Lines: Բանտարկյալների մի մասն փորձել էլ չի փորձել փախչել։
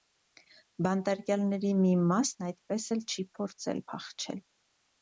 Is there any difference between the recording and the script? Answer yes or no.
yes